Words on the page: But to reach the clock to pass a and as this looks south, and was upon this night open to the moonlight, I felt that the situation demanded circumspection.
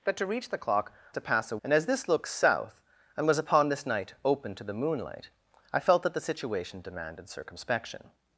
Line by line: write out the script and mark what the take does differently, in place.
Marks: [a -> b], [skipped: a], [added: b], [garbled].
But to reach the clock to pass a and as this looks south, and was upon this night open to the moonlight, I felt that the situation demanded circumspection.